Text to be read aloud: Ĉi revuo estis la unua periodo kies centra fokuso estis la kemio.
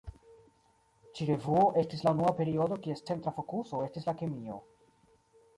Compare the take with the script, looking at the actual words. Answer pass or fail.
pass